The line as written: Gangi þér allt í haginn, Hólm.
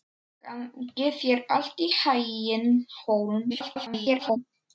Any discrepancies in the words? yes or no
yes